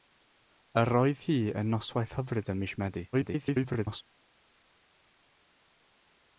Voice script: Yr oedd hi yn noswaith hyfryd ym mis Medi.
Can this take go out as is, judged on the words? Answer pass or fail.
fail